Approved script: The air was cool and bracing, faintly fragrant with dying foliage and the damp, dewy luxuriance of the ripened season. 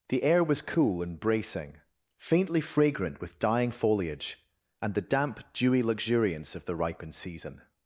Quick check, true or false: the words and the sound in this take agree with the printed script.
true